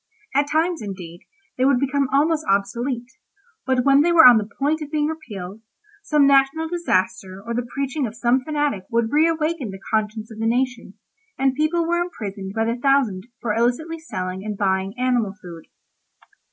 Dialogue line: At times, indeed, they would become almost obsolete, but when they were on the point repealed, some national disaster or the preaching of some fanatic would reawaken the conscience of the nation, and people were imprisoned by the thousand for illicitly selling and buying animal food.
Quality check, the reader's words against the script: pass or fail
fail